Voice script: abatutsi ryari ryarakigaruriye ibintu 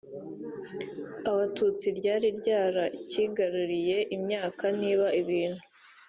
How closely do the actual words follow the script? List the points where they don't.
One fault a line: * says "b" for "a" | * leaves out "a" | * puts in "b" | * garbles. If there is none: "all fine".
* puts in "imyaka niba"